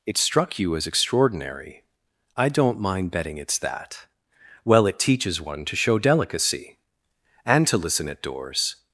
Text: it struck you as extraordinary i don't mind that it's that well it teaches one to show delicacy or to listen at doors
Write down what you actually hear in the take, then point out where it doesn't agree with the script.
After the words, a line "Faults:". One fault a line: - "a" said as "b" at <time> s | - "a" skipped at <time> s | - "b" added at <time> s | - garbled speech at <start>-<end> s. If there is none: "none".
it struck you as extraordinary i don't mind betting it's that well it teaches one to show delicacy and to listen at doors
Faults:
- "that" said as "betting" at 3.1 s
- "or" said as "and" at 7.4 s